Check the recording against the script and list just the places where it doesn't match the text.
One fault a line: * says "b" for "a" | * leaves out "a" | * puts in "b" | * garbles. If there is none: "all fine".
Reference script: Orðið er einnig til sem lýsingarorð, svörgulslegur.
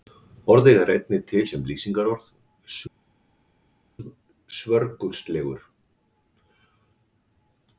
all fine